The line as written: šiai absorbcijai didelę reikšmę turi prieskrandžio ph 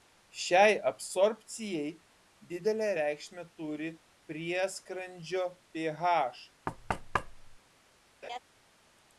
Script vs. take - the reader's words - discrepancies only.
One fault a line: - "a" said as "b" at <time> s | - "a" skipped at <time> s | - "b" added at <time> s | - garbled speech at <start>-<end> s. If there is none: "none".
none